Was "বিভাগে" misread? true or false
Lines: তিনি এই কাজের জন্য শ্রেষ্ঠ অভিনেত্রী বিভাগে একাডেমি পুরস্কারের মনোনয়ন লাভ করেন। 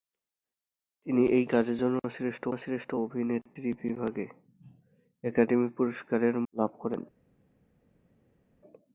false